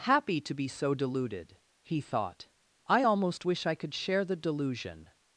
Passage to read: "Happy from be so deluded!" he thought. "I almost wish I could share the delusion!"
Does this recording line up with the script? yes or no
no